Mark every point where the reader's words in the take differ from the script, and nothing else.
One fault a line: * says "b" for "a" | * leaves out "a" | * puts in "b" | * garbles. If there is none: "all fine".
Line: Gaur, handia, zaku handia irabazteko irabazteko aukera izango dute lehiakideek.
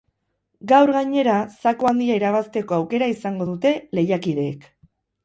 * says "gainera" for "handia"
* leaves out "irabazteko"